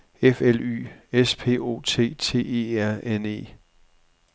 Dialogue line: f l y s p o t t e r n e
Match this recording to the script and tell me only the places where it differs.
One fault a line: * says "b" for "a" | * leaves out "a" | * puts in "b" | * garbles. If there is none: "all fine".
all fine